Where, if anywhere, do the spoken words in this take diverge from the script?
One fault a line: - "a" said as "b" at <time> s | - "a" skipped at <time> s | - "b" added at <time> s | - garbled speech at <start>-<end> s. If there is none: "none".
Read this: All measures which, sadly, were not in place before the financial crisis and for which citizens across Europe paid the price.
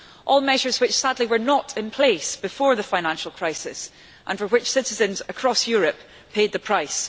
none